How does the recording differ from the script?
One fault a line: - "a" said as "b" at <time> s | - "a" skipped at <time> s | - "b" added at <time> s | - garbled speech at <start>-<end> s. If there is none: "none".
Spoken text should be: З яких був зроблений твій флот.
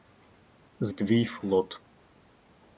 - "яких був зроблений" skipped at 0.9 s